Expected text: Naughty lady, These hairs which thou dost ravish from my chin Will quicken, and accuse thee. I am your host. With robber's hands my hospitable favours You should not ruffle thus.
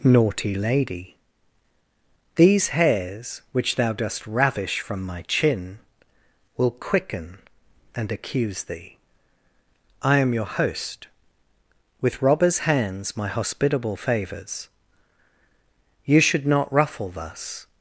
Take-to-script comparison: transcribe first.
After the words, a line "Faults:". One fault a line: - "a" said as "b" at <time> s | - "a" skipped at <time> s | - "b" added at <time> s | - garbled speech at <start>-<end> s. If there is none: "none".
Naughty lady, These hairs which thou dost ravish from my chin Will quicken, and accuse thee. I am your host. With robber's hands my hospitable favours You should not ruffle thus.
Faults:
none